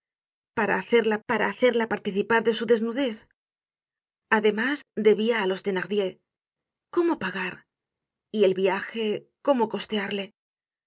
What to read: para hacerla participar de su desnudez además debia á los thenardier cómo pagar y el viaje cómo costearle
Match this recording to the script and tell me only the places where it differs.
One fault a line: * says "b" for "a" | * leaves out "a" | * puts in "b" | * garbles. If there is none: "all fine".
* puts in "para hacerla"